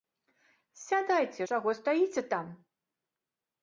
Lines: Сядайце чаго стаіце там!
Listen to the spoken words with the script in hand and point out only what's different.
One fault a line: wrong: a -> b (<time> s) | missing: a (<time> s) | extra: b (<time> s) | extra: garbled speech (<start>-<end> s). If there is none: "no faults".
no faults